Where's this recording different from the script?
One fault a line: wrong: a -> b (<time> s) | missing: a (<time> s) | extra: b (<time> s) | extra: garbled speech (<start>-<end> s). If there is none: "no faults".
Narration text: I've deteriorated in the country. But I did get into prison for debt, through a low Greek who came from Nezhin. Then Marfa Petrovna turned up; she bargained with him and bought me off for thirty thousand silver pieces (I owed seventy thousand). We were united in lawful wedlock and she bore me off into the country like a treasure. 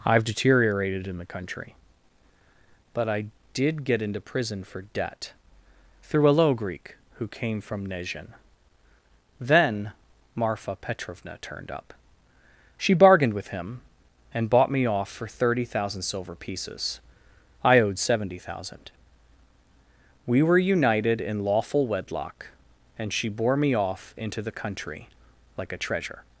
no faults